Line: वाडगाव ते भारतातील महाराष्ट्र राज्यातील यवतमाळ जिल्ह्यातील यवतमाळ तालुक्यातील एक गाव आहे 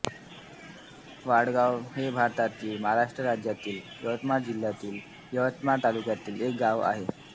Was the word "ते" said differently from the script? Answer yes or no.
yes